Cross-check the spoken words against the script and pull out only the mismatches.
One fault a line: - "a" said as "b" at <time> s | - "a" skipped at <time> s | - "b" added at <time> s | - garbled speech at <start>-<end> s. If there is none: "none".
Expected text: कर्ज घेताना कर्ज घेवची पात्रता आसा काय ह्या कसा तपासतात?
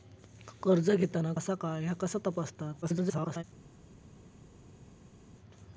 - "कर्ज घेवची पात्रता" skipped at 1.3 s
- garbled speech at 2.8-3.4 s